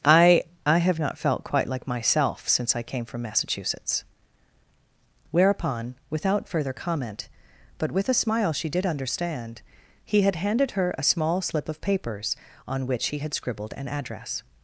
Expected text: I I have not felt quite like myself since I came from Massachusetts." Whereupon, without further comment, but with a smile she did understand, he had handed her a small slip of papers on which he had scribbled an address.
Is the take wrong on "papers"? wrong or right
right